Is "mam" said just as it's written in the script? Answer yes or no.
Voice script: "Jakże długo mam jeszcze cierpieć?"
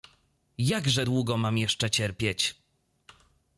yes